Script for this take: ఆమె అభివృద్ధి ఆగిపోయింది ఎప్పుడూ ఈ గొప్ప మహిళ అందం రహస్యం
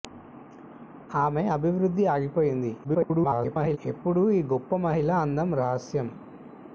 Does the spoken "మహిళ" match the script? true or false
true